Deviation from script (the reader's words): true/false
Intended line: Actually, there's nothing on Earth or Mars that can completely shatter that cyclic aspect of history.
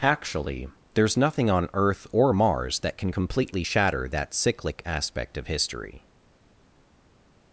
false